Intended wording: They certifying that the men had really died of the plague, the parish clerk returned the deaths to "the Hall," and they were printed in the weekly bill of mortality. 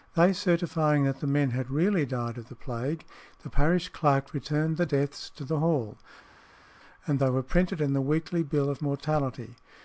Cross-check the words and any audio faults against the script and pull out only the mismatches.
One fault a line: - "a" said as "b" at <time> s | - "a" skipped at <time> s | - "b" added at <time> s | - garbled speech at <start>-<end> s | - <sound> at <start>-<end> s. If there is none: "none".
none